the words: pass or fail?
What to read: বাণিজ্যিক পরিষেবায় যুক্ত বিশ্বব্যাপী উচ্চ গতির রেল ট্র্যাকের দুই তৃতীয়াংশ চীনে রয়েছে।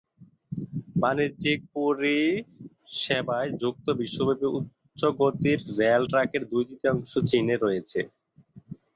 pass